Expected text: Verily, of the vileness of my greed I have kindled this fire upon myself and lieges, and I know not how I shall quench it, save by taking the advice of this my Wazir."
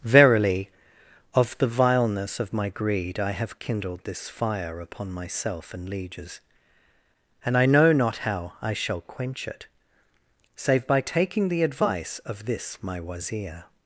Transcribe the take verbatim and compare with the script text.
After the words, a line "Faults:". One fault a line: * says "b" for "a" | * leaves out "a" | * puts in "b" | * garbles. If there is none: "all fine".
Verily, of the vileness of my greed I have kindled this fire upon myself and lieges, and I know not how I shall quench it, save by taking the advice of this my Wazir."
Faults:
all fine